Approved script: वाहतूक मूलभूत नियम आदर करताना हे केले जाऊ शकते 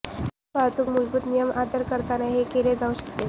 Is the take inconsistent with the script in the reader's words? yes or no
no